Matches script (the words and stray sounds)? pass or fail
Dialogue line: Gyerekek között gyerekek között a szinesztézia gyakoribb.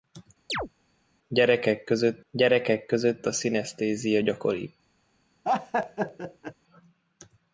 fail